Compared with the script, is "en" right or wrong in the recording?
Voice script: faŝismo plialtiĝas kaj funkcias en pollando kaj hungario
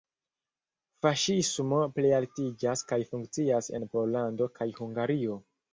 right